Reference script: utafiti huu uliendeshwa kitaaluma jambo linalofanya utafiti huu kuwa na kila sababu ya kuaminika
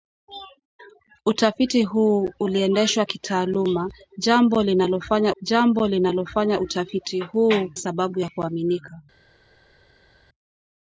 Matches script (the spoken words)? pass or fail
fail